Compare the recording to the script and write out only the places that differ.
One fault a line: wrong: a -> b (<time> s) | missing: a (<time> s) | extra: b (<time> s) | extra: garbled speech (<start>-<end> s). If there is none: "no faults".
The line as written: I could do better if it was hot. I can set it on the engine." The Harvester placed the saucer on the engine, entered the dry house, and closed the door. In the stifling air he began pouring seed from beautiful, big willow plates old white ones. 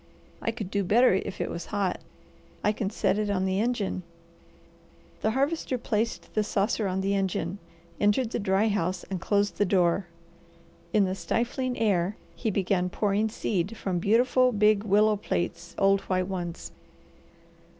no faults